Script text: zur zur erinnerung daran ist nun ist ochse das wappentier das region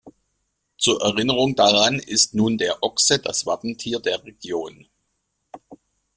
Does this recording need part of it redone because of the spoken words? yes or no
yes